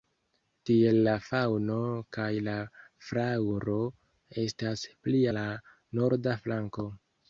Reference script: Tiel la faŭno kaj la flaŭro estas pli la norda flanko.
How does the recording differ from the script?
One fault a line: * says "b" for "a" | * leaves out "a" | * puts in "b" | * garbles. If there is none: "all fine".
all fine